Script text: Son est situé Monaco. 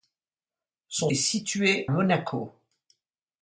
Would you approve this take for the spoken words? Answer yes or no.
yes